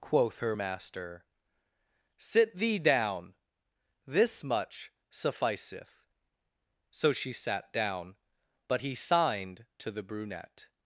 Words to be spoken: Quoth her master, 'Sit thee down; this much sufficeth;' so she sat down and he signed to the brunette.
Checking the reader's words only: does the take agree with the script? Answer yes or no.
no